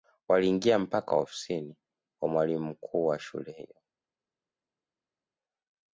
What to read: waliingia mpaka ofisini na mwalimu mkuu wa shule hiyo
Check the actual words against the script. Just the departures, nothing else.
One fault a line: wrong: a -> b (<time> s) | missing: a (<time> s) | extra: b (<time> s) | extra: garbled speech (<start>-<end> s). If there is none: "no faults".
wrong: na -> kwa (2.2 s)